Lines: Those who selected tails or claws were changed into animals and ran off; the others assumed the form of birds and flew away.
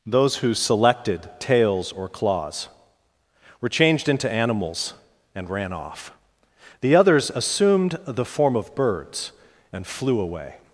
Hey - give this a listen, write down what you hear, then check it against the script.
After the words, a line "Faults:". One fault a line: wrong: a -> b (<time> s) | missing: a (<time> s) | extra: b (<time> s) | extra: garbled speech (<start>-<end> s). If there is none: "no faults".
Those who selected tails or claws were changed into animals and ran off; the others assumed the form of birds and flew away.
Faults:
no faults